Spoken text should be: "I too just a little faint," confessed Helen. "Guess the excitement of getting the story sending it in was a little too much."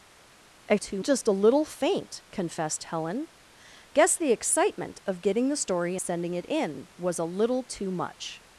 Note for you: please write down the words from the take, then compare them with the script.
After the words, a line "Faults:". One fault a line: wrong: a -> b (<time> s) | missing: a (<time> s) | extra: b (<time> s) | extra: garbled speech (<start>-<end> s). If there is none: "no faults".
"I too just a little faint," confessed Helen. "Guess the excitement of getting the story sending it in was a little too much."
Faults:
no faults